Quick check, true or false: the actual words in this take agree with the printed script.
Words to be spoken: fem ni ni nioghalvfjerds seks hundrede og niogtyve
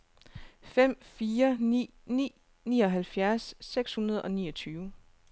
false